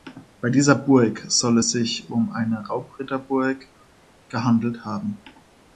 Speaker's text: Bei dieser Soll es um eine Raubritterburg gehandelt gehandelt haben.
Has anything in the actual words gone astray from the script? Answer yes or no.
yes